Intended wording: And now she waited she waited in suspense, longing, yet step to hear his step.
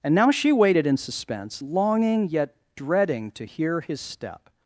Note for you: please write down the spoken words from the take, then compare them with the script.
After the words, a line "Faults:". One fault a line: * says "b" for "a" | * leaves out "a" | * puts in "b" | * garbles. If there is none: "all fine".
And now she waited in suspense, longing, yet dreading to hear his step.
Faults:
* leaves out "she waited"
* says "dreading" for "step"